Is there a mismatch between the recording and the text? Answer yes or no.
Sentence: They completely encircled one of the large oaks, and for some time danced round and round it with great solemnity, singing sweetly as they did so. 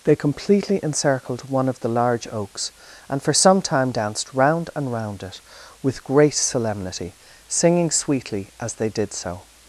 no